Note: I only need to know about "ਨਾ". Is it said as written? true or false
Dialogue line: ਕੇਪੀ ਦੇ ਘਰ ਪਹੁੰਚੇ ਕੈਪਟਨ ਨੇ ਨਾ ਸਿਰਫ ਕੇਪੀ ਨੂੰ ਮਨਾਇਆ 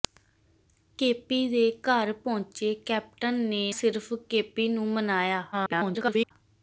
false